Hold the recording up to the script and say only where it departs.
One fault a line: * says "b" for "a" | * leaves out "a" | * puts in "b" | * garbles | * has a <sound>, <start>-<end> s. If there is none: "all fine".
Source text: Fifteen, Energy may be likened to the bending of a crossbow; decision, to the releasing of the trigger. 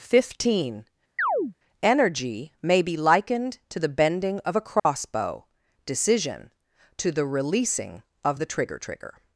* has a chirp, 1.2-1.5 s
* has a dropout, 4.8-4.9 s
* puts in "trigger"